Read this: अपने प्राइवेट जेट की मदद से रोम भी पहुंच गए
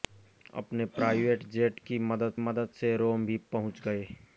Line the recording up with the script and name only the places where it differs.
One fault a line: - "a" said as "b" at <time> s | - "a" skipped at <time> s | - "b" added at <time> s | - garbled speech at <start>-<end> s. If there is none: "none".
- "मदद" added at 2.4 s